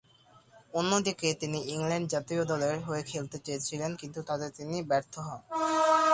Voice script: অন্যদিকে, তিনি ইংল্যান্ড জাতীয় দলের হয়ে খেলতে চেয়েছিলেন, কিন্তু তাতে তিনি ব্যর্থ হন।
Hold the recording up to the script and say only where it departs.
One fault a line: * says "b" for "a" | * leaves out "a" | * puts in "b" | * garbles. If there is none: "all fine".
all fine